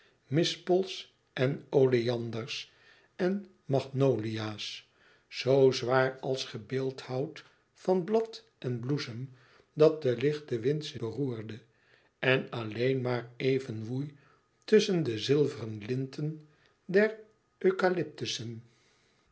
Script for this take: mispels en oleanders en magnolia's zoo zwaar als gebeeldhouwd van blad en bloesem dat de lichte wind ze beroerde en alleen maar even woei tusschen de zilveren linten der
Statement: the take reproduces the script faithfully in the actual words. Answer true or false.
true